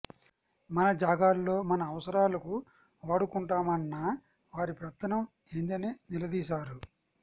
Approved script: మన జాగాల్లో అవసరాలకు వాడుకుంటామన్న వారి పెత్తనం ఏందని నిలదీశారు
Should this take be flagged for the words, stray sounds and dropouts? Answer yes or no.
yes